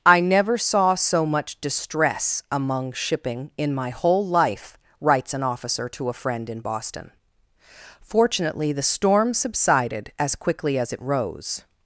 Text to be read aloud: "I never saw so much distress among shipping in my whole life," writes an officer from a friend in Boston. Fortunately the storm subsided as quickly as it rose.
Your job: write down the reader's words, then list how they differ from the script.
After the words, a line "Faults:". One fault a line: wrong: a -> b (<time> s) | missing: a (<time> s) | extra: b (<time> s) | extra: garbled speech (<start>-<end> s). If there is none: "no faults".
"I never saw so much distress among shipping in my whole life," writes an officer to a friend in Boston. Fortunately the storm subsided as quickly as it rose.
Faults:
wrong: from -> to (5.9 s)